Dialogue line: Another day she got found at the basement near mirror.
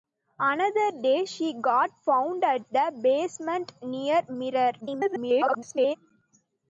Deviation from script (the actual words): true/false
true